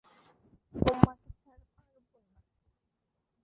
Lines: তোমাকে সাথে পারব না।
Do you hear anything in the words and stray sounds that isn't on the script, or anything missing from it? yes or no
yes